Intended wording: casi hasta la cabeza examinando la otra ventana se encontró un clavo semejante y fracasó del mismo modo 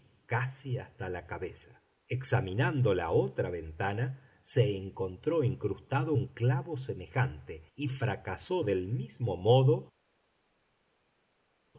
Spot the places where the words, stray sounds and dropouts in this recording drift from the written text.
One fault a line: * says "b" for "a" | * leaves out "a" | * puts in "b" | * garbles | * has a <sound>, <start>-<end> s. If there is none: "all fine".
* puts in "incrustado"